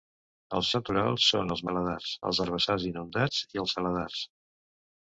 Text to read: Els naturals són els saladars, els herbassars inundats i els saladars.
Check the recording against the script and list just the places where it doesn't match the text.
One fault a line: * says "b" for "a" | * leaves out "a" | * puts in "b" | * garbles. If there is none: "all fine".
all fine